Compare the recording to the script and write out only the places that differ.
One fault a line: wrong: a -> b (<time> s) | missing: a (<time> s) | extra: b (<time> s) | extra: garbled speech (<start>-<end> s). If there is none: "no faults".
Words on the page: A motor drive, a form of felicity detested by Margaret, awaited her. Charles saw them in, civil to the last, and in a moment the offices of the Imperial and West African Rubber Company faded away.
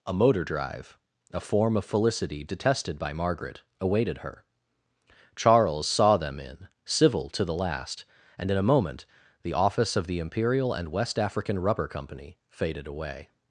wrong: offices -> office (9.5 s)